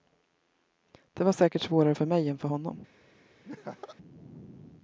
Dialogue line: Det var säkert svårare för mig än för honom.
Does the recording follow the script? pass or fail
pass